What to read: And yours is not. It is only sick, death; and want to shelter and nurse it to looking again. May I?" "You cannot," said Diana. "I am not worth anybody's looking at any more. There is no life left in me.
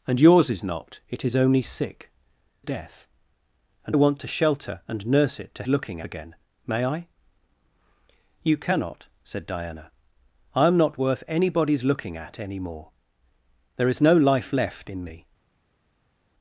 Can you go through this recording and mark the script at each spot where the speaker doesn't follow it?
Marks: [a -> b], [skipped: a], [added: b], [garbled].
And yours is not. It is only sick, death; and want to shelter and nurse it to looking again. May I?" "You cannot," said Diana. "I am not worth anybody's looking at any more. There is no life left in me.